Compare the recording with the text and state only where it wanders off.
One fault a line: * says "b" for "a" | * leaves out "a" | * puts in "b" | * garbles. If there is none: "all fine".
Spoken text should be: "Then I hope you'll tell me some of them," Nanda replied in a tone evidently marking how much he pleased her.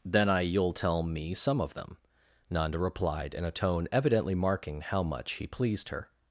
* leaves out "hope"